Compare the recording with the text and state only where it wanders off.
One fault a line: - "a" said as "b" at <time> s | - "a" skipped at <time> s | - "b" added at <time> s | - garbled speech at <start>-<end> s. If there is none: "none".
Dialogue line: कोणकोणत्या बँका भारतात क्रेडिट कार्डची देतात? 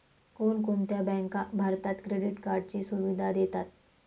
- "सुविधा" added at 2.8 s